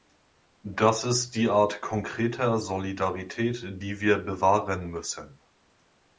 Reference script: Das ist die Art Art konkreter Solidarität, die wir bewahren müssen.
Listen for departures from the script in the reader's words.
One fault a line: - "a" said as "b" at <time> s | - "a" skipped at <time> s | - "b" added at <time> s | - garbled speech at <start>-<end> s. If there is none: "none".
- "Art" skipped at 1.8 s